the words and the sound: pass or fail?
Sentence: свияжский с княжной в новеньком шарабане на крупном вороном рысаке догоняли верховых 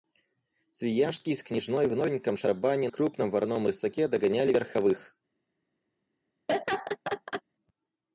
fail